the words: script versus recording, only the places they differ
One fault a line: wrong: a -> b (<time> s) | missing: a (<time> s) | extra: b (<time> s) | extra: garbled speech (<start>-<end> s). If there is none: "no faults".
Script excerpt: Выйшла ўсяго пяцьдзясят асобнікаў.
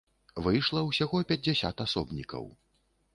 no faults